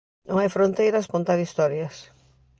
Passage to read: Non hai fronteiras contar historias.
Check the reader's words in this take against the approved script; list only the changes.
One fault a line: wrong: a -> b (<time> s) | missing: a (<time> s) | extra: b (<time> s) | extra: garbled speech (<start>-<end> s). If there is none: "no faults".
no faults